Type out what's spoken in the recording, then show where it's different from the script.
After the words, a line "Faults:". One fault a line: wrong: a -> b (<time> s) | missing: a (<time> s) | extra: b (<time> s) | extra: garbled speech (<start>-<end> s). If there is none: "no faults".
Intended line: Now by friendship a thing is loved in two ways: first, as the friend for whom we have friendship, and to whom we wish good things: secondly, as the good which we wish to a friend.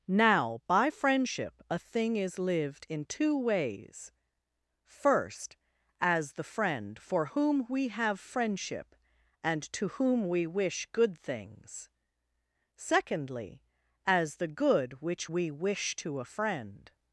Now by friendship a thing is lived in two ways: first, as the friend for whom we have friendship, and to whom we wish good things: secondly, as the good which we wish to a friend.
Faults:
wrong: loved -> lived (2.4 s)